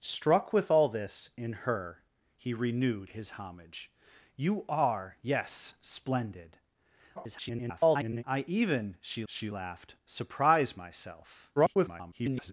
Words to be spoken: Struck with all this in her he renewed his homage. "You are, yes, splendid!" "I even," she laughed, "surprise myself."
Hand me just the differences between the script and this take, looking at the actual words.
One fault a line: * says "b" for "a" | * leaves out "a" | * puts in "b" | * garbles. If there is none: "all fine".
* garbles
* puts in "she"
* garbles